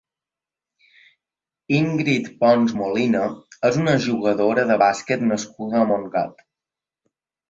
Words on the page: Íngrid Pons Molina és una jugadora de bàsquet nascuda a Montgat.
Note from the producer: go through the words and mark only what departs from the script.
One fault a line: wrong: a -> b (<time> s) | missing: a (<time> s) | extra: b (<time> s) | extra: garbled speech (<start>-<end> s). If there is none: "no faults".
no faults